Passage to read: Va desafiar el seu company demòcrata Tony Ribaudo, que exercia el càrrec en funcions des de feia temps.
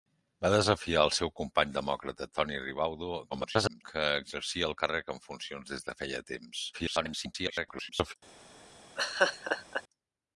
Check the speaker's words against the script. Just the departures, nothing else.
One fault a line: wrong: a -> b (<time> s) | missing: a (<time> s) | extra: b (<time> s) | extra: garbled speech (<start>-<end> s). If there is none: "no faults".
extra: garbled speech (3.3-3.8 s)
extra: garbled speech (6.7-8.1 s)